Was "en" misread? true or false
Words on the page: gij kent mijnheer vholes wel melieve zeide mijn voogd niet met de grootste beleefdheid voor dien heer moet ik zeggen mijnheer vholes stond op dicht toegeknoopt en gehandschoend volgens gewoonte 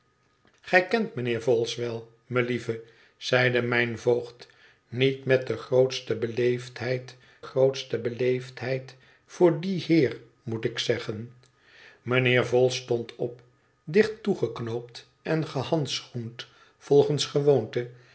false